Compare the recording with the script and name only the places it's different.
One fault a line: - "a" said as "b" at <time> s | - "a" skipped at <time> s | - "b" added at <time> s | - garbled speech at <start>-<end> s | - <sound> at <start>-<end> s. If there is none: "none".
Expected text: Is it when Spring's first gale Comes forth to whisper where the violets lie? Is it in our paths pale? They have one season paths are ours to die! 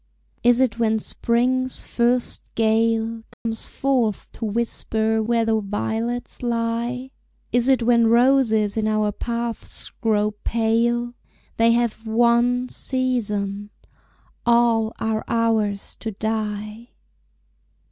- dropout at 3.3-3.5 s
- "when roses" added at 7.8 s
- "grow" added at 10.0 s
- "paths" said as "all" at 14.4 s